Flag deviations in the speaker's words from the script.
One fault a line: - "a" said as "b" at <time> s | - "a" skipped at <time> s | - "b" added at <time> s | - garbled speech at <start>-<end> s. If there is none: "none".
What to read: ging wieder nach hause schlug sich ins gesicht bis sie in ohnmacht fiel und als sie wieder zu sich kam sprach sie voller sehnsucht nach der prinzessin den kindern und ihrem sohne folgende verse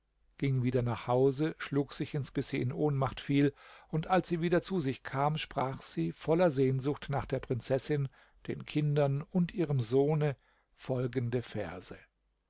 - "gesicht" skipped at 2.3 s